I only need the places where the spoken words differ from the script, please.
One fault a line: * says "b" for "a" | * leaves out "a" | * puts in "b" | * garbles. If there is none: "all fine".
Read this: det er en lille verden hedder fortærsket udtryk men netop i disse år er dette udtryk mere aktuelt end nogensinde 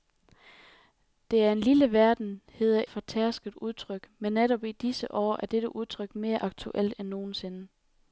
all fine